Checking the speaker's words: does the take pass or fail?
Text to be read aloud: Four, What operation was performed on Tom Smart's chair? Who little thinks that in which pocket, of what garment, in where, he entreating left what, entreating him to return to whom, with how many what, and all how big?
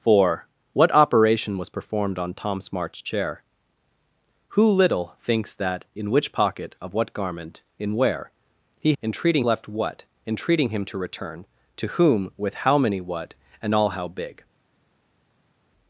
pass